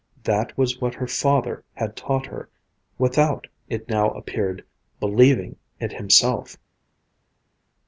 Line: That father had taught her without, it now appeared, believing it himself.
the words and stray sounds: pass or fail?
fail